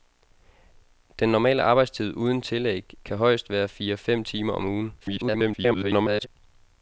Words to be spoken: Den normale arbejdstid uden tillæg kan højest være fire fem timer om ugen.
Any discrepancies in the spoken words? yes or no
yes